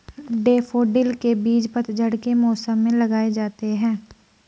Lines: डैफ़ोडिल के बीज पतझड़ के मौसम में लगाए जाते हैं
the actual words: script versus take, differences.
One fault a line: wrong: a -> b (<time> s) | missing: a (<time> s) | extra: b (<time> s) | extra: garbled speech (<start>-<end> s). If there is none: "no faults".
no faults